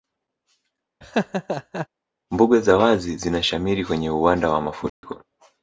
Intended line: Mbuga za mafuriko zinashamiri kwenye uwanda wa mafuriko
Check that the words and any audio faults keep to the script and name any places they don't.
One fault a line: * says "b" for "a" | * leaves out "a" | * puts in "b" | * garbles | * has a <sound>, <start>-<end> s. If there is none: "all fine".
* has a laugh, 1.0-1.9 s
* says "wazi" for "mafuriko"
* has a dropout, 4.9-5.0 s